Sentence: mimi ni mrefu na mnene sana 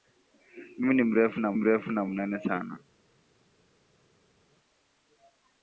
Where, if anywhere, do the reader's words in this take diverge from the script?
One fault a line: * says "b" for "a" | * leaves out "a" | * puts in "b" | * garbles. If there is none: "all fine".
* puts in "mrefu na"